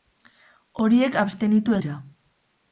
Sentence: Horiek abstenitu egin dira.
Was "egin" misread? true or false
true